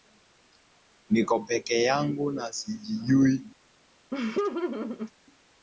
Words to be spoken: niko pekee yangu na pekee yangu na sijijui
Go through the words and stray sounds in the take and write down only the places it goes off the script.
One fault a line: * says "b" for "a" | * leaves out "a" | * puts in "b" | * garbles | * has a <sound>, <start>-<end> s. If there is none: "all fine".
* leaves out "pekee yangu na"
* has a laugh, 4.1-5.1 s